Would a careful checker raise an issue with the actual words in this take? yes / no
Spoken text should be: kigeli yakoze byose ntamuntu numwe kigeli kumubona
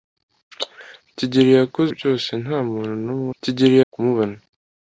no